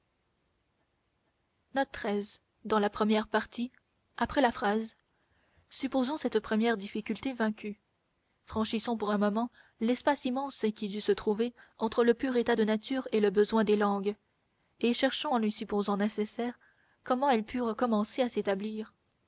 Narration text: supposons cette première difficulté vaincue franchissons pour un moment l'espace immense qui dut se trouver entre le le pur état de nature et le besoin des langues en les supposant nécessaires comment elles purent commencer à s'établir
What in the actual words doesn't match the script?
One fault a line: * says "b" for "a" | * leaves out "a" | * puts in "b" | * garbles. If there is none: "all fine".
* leaves out "le"
* puts in "et cherchons"